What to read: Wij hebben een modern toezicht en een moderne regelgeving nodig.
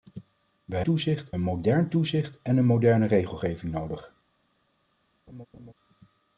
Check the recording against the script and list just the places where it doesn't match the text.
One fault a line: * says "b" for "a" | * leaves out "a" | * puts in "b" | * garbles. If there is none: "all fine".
* says "toezicht" for "hebben"